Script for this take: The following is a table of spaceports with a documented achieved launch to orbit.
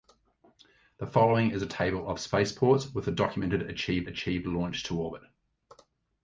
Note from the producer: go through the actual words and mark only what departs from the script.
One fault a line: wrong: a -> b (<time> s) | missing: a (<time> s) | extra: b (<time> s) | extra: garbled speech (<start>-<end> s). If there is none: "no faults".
extra: achieved (4.1 s)